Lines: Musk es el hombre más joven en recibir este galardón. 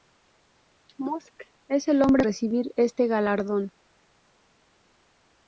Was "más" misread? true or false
true